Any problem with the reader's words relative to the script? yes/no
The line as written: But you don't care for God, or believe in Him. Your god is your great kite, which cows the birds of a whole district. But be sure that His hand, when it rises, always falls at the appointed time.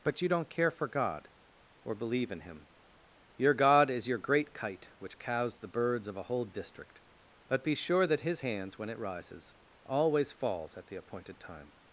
yes